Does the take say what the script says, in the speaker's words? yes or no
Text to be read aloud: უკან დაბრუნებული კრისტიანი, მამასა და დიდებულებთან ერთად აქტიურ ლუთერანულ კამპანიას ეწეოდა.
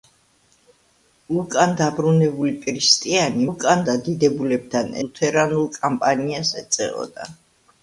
no